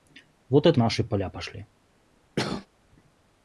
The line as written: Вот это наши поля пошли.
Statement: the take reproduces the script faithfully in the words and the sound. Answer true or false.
false